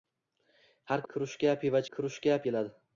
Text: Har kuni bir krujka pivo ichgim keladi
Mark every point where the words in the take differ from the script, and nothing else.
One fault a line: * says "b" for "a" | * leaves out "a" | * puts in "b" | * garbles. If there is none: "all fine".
* leaves out "kuni bir"
* says "krujka" for "ichgim"